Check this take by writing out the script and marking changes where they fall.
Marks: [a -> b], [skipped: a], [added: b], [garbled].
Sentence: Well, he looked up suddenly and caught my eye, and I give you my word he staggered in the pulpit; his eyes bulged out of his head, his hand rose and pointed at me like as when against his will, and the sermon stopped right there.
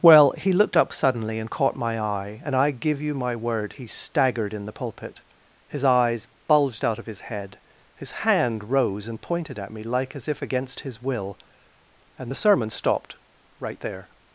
Well, he looked up suddenly and caught my eye, and I give you my word he staggered in the pulpit; his eyes bulged out of his head, his hand rose and pointed at me like as [when -> if] against his will, and the sermon stopped right there.